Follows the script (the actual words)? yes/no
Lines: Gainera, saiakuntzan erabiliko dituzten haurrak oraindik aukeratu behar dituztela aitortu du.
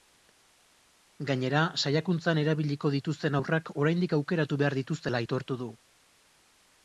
yes